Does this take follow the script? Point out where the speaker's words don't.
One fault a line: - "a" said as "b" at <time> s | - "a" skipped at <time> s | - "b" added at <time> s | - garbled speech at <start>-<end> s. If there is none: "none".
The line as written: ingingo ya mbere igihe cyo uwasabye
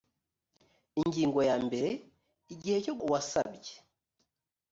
none